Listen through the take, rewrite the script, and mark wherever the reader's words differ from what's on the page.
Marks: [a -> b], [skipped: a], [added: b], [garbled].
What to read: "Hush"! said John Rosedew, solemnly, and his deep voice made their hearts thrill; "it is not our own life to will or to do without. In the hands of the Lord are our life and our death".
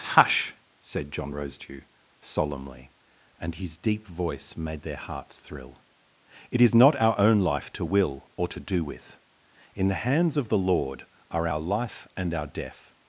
"Hush"! said John Rosedew, solemnly, and his deep voice made their hearts thrill; "it is not our own life to will or to do [without. -> with] In the hands of the Lord are our life and our death".